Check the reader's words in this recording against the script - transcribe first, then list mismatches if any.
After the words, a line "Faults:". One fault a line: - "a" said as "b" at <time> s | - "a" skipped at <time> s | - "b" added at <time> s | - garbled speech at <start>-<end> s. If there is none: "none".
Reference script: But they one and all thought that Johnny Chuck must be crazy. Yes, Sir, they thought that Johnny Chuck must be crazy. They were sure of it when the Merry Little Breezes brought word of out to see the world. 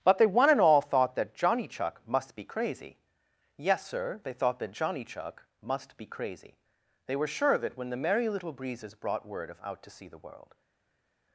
But they one and all thought that Johnny Chuck must be crazy. Yes, Sir, they thought that Johnny Chuck must be crazy. They were sure of it when the Merry Little Breezes brought word of out to see the world.
Faults:
none